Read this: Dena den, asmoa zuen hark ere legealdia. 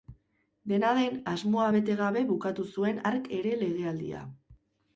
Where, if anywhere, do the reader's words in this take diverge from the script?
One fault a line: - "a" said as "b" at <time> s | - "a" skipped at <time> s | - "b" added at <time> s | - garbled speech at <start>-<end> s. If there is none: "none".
- "bete gabe bukatu" added at 1.8 s